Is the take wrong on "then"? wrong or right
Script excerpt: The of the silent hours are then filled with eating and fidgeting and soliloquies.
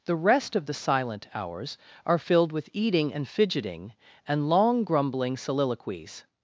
wrong